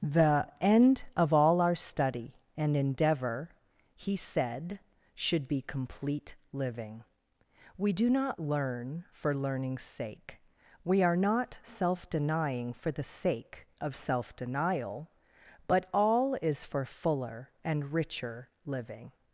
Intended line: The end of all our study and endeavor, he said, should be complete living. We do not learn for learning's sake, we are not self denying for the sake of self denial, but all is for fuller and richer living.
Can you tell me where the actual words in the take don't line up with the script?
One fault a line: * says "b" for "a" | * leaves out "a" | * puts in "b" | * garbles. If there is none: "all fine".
all fine